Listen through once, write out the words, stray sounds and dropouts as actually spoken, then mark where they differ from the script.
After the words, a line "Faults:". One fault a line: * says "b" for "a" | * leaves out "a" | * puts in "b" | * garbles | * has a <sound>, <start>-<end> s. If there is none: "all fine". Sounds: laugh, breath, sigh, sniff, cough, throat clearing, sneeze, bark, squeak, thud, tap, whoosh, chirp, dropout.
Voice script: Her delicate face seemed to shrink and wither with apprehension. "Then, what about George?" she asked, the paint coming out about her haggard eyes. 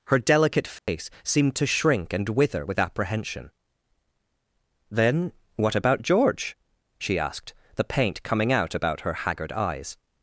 Her delicate face seemed to shrink and wither with apprehension. "Then, what about George?" she asked, the paint coming out about her haggard eyes.
Faults:
* has a dropout, 0.8-0.9 s